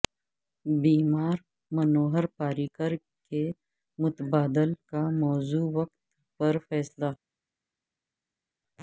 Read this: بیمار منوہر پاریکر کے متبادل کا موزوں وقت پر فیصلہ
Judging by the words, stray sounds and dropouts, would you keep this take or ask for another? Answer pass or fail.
pass